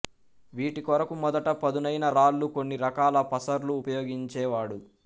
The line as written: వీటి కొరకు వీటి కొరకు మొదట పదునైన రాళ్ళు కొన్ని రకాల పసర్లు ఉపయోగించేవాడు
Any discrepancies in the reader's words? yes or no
yes